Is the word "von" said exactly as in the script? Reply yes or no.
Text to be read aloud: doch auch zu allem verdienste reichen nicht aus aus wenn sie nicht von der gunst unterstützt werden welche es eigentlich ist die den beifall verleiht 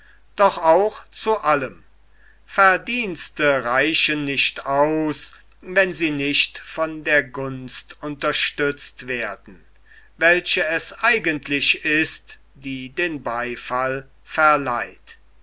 yes